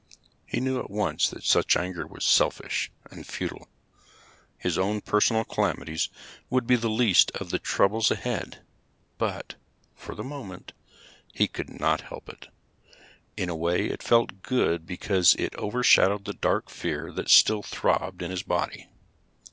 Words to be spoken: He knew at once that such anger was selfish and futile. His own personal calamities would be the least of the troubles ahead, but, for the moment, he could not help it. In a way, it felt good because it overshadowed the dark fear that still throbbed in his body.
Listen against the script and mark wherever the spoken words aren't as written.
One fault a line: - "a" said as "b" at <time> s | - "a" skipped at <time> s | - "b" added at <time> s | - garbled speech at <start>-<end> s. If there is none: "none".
none